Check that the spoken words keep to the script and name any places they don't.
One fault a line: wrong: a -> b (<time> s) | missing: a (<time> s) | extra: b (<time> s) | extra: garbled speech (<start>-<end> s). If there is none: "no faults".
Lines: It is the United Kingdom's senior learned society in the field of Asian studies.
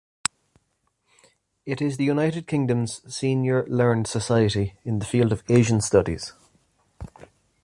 no faults